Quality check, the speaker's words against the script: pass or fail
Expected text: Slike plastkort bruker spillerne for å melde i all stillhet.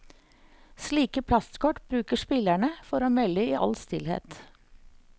pass